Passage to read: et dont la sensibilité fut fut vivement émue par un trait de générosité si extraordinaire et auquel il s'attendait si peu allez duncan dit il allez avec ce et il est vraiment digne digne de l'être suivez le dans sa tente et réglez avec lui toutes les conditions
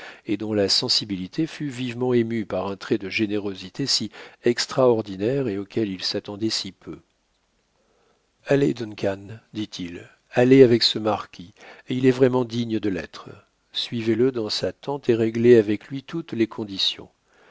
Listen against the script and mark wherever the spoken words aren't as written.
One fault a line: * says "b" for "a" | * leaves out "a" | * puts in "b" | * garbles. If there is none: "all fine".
* leaves out "fut"
* puts in "marquis"
* leaves out "digne"